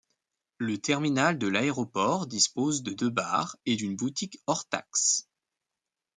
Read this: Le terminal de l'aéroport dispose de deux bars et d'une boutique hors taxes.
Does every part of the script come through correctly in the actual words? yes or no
yes